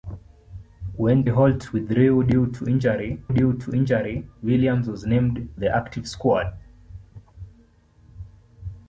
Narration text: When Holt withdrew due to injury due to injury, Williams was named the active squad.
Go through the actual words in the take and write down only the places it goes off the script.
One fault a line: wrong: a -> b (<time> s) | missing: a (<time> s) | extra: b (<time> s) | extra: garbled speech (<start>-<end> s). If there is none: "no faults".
no faults